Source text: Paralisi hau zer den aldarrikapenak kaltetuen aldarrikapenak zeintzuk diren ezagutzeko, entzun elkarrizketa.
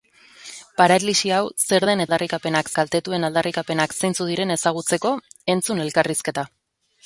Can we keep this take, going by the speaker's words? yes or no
yes